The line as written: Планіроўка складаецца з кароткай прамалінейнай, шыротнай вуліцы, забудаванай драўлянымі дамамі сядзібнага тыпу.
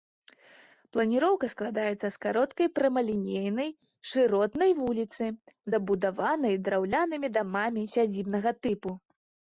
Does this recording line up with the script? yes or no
yes